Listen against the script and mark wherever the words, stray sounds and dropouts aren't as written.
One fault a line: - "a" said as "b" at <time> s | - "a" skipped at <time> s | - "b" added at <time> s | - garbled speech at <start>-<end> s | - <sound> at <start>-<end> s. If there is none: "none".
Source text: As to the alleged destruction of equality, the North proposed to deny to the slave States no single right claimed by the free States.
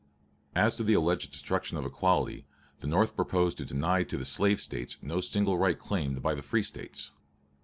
none